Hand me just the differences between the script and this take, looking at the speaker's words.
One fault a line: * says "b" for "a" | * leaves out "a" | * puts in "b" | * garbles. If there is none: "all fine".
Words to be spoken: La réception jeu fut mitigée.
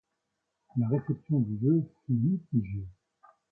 * puts in "du"